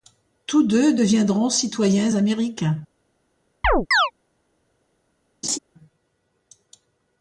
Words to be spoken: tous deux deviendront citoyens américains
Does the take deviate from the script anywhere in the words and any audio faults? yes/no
yes